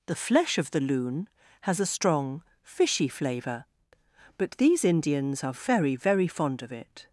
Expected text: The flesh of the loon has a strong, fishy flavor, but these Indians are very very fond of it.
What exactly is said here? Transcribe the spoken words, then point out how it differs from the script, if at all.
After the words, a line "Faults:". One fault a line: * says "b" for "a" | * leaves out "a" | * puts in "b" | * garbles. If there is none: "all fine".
The flesh of the loon has a strong, fishy flavor, but these Indians are very very fond of it.
Faults:
all fine